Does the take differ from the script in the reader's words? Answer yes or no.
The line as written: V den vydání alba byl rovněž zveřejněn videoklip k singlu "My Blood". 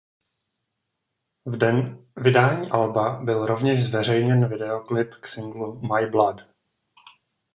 no